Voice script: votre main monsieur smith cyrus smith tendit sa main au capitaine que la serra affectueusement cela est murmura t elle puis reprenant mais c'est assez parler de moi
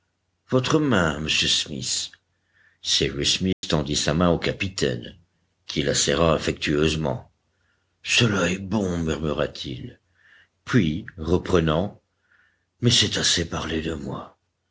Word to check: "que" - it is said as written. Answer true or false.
false